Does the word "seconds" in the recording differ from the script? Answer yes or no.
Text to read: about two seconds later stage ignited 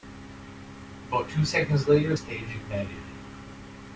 no